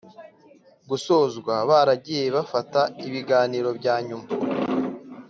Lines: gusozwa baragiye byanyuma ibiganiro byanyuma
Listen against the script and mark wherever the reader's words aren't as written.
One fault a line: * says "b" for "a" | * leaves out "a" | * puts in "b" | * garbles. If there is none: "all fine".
* says "bafata" for "byanyuma"